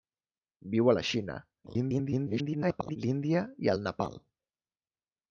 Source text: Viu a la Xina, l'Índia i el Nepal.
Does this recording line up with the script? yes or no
no